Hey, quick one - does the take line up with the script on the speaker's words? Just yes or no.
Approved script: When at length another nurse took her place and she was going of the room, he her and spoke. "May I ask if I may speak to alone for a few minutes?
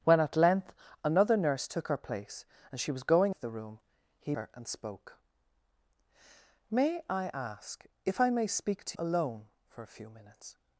yes